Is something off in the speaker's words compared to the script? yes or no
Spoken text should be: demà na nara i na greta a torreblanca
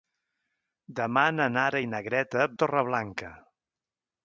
no